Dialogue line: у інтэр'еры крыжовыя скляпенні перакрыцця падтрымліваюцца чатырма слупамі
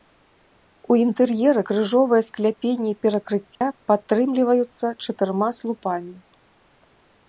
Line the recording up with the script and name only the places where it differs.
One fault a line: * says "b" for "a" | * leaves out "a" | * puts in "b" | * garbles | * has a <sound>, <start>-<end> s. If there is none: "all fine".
* has a dropout, 3.5-3.6 s